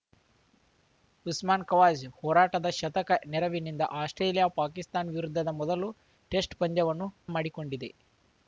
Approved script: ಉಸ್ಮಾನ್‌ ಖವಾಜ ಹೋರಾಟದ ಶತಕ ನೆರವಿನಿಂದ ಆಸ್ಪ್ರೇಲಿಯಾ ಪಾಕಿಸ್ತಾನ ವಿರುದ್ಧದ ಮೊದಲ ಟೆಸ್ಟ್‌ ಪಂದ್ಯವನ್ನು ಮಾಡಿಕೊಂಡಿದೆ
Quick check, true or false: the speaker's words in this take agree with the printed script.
true